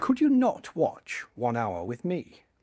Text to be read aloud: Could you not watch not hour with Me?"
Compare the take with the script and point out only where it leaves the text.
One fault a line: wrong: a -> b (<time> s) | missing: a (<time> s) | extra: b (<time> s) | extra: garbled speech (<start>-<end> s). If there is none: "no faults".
wrong: not -> one (1.4 s)